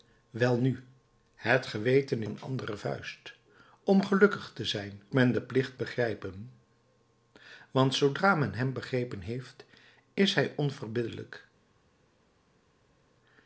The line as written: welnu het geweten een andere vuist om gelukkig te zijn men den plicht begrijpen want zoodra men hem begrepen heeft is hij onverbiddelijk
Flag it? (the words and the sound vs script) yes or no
no